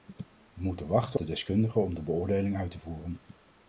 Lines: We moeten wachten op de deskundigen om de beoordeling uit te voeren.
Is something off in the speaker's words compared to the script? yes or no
yes